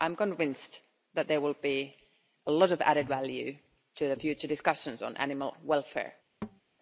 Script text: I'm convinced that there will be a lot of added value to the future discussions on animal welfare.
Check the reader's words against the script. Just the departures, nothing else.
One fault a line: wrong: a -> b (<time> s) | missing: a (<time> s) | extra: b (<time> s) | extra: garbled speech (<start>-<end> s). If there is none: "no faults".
no faults